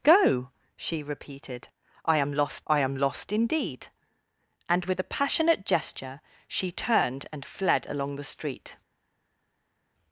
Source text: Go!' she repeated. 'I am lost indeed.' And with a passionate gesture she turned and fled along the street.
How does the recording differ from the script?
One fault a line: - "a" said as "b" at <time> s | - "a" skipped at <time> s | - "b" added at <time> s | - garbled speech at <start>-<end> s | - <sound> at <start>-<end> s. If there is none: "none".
- "I am lost" added at 2.7 s